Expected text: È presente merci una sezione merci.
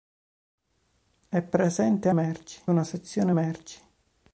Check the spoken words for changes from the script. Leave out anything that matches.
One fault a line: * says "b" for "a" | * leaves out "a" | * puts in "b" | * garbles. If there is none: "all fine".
all fine